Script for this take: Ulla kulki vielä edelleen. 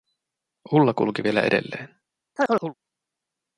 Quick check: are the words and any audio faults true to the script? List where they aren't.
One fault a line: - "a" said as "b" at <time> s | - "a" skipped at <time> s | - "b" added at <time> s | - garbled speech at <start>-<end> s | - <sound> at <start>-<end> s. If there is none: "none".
- chirp at 2.4-2.7 s